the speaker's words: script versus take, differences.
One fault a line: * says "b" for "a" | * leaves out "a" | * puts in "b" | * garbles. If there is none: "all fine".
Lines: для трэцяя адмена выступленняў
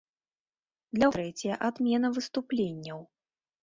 all fine